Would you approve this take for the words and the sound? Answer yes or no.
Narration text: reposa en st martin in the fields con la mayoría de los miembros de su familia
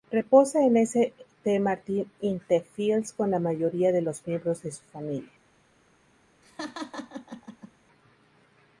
no